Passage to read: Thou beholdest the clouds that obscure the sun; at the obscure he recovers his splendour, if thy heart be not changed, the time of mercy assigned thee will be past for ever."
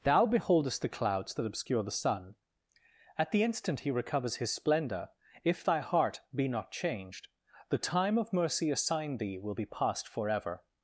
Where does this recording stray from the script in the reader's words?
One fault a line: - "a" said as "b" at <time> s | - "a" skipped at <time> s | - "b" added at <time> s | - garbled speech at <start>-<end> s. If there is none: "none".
- "obscure" said as "instant" at 3.4 s